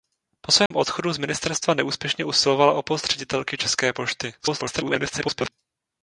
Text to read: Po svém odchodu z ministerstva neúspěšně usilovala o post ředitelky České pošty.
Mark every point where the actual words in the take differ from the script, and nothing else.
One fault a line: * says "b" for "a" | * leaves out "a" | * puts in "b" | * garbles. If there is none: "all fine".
* garbles